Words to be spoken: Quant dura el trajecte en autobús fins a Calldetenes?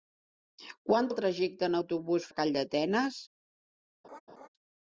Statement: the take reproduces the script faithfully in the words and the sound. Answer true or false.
false